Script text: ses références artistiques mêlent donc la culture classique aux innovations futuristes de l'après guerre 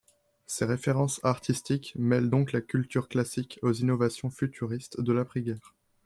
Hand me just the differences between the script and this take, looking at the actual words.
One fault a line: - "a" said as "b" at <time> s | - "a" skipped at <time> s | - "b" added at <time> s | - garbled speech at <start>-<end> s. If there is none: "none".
none